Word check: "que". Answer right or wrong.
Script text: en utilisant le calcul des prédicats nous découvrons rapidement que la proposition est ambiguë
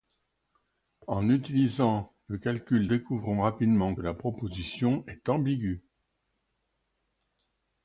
wrong